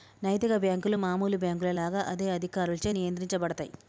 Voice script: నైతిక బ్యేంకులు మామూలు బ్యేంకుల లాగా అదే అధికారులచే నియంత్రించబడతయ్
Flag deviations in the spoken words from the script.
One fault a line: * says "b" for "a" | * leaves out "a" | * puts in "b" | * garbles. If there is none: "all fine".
all fine